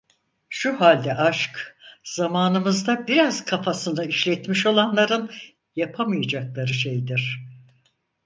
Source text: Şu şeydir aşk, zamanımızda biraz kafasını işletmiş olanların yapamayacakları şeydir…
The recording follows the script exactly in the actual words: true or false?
false